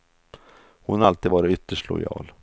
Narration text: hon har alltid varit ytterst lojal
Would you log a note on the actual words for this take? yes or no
no